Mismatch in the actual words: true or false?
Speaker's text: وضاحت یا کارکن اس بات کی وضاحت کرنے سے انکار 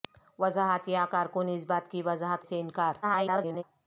true